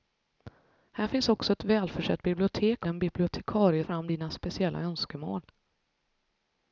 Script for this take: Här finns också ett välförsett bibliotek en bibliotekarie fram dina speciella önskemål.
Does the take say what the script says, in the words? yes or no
yes